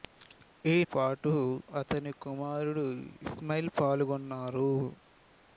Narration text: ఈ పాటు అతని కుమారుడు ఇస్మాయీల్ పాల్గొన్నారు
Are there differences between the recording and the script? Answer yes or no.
no